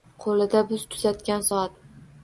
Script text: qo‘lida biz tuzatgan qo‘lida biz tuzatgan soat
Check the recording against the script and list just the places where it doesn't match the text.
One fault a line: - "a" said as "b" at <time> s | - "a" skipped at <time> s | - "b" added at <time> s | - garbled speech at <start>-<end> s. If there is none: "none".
- "qo‘lida biz tuzatgan" skipped at 1.5 s